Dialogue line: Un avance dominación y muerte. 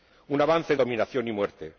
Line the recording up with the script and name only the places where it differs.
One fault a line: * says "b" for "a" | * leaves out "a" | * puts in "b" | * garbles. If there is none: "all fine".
all fine